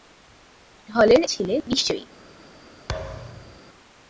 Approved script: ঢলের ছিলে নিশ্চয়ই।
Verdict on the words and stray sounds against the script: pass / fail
fail